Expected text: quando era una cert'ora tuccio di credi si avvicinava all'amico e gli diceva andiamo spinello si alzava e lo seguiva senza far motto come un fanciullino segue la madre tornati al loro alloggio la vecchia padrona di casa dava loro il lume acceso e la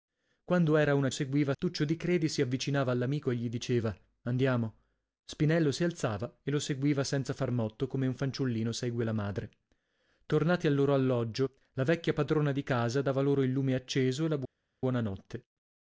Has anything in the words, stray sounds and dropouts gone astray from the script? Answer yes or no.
yes